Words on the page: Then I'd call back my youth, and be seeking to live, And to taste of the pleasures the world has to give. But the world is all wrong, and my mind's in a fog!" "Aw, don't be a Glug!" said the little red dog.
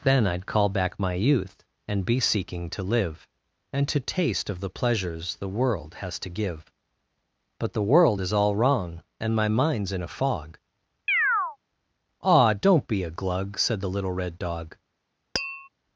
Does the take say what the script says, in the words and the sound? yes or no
no